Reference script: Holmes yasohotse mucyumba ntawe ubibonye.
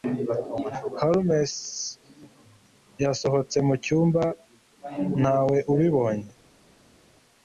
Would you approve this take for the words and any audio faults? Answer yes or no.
yes